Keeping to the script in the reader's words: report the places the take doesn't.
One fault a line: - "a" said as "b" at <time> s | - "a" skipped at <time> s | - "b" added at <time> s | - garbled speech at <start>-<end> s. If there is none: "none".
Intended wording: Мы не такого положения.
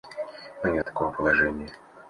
none